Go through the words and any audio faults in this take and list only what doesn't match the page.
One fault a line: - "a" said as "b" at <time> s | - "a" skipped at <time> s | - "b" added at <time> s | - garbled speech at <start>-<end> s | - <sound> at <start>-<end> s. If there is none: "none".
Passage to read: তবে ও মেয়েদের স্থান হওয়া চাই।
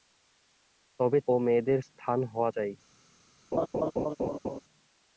- laugh at 3.5-4.6 s